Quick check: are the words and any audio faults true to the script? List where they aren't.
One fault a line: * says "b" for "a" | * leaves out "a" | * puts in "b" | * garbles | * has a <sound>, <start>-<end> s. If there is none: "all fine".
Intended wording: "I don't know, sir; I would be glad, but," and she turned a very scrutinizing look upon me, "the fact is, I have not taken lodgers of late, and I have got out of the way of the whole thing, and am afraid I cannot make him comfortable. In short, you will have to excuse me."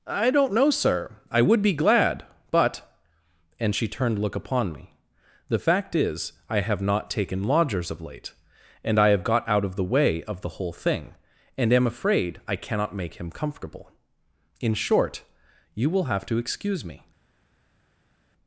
* leaves out "a very scrutinizing"